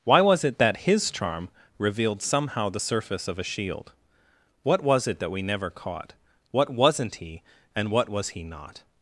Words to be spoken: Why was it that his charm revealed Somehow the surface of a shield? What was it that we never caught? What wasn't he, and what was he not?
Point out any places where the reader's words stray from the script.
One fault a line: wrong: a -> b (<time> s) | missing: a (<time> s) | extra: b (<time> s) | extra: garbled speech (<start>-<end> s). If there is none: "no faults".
no faults